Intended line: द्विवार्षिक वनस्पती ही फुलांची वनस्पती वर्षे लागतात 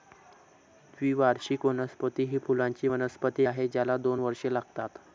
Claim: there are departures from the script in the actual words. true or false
true